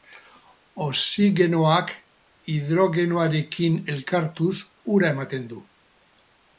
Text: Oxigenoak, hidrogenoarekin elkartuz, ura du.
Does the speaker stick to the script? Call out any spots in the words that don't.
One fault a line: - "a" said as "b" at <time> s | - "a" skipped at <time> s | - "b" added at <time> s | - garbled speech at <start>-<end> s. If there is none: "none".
- "ematen" added at 5.2 s